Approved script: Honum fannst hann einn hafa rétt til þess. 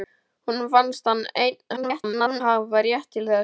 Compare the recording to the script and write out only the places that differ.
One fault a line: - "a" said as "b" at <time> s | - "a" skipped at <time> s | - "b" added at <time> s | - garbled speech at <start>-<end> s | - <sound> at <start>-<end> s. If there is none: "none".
- garbled speech at 1.8-2.4 s